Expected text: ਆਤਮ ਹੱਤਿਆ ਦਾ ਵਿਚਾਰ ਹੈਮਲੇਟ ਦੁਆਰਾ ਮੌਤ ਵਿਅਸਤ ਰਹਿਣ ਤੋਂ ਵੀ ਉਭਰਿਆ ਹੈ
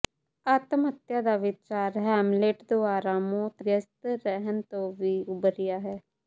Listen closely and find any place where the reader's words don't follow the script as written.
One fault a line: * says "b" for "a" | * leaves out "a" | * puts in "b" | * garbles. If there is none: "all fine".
all fine